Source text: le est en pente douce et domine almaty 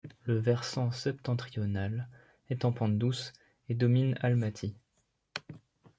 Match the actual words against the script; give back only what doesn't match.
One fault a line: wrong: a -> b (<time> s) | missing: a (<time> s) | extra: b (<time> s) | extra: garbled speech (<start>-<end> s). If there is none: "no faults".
extra: versant septentrional (0.4 s)